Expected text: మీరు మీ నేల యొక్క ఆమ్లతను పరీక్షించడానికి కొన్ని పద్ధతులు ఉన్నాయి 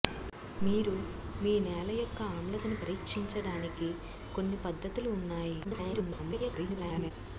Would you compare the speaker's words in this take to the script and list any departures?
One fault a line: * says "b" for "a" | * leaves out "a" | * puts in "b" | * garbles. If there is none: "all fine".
* garbles